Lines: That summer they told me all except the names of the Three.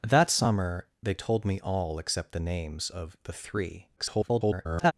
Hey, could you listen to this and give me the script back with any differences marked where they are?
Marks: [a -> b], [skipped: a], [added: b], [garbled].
That summer they told me all except the names of the Three. [garbled]